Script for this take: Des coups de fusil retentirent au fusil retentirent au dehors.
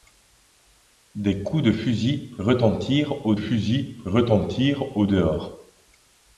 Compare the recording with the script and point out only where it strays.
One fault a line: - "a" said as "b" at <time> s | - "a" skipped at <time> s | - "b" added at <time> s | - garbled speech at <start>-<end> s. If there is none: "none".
none